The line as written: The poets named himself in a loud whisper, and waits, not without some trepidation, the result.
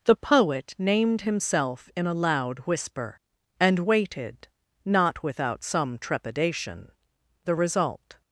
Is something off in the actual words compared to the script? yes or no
yes